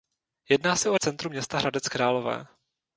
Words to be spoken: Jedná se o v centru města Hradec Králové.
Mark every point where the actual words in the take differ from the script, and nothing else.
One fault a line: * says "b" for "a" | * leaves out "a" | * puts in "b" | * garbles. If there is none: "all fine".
all fine